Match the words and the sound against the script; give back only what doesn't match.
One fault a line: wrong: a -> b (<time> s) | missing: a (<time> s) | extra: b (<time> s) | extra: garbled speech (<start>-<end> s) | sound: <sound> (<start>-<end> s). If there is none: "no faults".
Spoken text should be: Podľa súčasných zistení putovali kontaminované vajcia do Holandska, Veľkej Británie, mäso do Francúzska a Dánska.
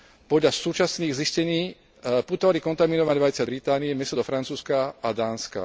missing: do Holandska Veľkej (3.5 s)